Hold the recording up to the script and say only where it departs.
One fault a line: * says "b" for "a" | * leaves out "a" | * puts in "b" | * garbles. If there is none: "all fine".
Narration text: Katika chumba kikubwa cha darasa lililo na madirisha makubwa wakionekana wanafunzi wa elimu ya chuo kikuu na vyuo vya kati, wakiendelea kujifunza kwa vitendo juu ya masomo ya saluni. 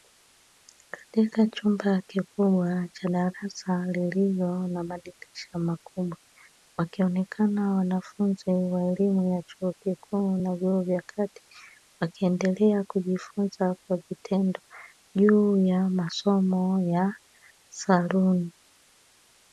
all fine